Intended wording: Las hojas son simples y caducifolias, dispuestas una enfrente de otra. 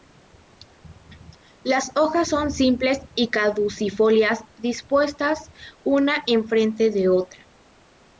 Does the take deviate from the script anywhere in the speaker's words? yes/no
no